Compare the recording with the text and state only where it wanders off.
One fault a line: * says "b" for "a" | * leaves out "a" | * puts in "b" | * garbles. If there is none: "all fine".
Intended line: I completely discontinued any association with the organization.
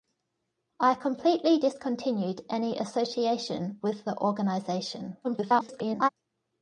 * garbles